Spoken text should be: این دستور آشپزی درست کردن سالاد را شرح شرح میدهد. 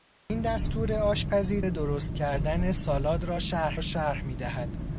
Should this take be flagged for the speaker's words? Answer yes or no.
no